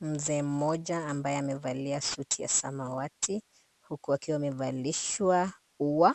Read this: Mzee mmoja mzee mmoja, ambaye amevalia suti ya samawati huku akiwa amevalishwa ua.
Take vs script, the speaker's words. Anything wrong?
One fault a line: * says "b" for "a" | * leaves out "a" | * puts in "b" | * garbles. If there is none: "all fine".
* leaves out "mzee mmoja"